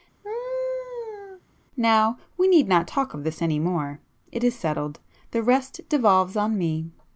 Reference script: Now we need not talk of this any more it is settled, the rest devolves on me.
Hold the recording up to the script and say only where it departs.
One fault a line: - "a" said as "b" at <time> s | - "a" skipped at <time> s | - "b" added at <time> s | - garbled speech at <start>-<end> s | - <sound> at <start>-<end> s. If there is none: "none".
- laugh at 0.2-1.4 s